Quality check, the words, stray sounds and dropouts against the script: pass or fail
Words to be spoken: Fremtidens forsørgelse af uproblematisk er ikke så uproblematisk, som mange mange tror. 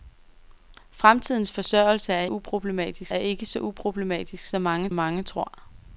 pass